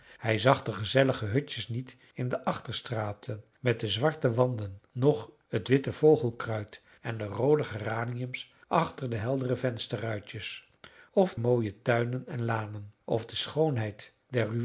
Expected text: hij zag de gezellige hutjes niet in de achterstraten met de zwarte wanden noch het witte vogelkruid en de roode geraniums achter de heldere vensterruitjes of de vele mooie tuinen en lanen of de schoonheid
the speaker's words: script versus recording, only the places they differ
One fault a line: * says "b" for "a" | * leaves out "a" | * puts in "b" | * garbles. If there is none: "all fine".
* leaves out "de vele"